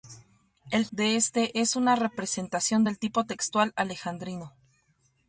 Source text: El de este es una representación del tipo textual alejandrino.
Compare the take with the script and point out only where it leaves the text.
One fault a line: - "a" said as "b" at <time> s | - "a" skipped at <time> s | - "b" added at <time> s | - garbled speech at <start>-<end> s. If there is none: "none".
none